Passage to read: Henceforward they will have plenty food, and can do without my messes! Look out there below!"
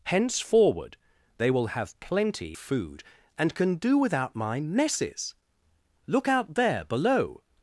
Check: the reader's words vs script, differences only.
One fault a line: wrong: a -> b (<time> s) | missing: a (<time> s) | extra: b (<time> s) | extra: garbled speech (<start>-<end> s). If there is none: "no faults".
no faults